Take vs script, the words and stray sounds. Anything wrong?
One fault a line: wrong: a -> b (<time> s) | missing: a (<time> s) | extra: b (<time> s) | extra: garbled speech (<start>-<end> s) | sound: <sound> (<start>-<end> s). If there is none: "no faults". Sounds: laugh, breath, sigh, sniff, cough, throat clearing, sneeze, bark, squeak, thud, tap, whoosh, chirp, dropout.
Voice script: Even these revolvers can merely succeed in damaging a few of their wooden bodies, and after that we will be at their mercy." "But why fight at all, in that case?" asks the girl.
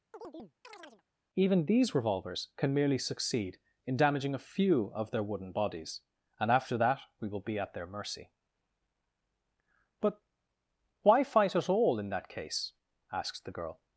sound: chirp (0.1-1.0 s)